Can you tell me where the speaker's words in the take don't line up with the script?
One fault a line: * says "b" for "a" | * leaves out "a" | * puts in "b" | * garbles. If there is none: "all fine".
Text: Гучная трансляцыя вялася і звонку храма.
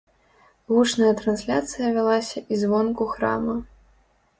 all fine